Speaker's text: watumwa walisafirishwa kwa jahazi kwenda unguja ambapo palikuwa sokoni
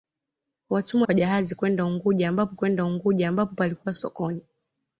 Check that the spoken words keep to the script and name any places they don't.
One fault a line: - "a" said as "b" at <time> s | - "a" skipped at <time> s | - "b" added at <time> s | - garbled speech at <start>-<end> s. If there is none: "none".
- "walisafirishwa" skipped at 1.0 s
- "kwenda unguja ambapo" added at 2.5 s